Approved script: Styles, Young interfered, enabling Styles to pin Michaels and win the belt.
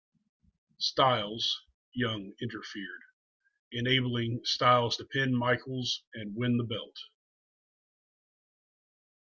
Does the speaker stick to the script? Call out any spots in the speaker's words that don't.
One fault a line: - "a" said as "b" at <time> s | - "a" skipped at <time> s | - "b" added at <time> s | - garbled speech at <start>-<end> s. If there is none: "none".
none